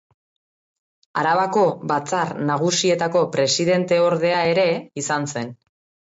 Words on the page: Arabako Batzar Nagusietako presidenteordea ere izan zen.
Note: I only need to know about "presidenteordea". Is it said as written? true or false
true